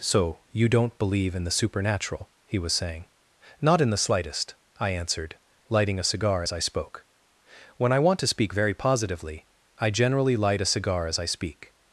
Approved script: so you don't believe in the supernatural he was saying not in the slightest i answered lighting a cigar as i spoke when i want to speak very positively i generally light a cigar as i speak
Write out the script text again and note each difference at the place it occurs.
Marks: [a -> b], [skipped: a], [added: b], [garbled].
so you don't believe in the supernatural he was saying not in the slightest i answered lighting a cigar as i spoke when i want to speak very positively i generally light a cigar as i speak